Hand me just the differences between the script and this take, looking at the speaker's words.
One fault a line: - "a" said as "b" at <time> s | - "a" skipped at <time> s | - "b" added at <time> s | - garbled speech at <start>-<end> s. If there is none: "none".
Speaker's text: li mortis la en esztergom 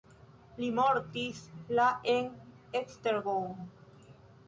none